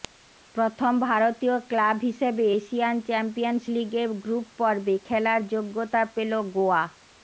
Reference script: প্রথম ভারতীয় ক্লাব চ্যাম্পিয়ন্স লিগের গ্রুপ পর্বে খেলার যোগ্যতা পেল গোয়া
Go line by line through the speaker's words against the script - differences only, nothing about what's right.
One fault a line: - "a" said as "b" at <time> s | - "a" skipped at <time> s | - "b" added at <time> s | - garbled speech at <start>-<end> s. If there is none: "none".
- "হিসেবে এশিয়ান" added at 2.1 s